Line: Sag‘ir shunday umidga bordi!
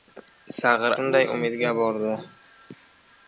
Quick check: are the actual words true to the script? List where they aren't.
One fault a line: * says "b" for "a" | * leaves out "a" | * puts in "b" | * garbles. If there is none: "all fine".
all fine